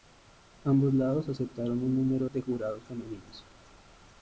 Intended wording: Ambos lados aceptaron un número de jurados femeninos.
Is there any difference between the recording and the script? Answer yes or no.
no